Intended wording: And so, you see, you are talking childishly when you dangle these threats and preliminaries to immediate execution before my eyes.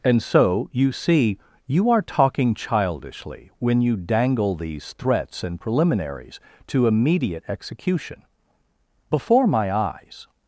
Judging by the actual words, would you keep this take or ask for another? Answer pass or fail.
pass